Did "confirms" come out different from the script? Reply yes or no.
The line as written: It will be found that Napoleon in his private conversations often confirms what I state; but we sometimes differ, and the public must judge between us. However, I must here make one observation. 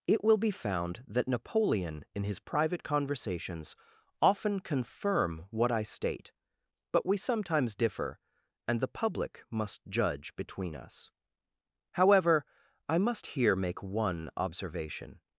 yes